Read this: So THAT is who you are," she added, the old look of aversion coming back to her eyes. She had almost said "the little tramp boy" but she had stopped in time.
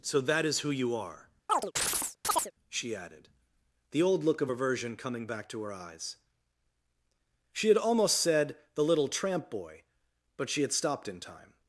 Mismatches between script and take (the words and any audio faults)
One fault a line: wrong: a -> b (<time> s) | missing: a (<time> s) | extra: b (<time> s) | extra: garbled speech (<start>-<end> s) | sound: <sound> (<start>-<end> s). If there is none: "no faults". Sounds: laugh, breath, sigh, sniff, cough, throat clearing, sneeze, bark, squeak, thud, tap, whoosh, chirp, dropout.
sound: chirp (1.5-2.5 s)